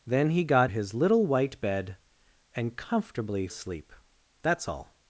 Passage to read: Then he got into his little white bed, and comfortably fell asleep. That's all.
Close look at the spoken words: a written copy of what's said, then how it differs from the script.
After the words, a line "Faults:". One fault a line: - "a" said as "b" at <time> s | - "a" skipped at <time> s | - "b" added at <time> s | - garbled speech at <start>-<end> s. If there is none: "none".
Then he got his little white bed, and comfortably asleep. That's all.
Faults:
- "into" skipped at 0.7 s
- "fell" skipped at 3.5 s